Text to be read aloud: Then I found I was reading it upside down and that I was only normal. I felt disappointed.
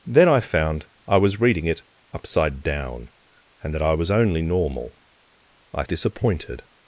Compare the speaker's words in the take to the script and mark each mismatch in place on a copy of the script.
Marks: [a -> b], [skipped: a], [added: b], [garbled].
Then I found I was reading it upside down and that I was only normal. I [skipped: felt] disappointed.